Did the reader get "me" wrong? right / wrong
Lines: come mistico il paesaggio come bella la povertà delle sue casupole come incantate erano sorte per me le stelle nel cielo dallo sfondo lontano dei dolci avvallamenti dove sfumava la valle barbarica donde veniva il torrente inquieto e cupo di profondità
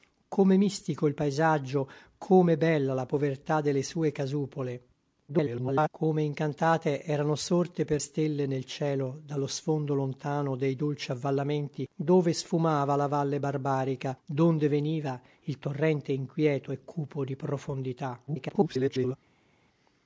wrong